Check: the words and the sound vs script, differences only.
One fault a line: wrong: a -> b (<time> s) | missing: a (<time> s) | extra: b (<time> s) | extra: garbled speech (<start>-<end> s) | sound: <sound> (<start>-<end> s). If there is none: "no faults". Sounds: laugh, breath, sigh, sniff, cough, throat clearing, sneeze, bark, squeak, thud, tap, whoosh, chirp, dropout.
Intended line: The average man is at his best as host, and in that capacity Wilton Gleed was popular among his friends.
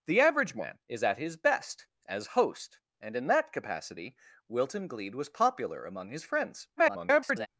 extra: garbled speech (6.8-7.5 s)